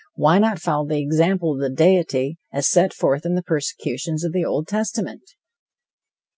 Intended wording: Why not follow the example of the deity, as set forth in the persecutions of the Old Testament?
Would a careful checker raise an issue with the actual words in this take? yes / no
no